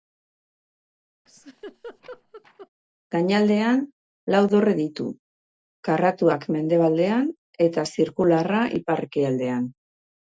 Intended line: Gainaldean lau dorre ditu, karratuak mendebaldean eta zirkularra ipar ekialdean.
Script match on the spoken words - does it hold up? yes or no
yes